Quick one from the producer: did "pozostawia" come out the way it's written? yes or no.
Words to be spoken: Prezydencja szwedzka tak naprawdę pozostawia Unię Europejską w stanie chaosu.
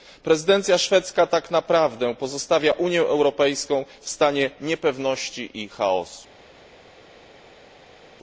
yes